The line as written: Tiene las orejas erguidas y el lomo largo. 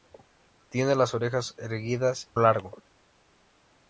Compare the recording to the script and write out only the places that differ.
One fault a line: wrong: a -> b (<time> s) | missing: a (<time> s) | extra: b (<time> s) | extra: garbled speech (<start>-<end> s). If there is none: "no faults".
missing: y el lomo (2.3 s)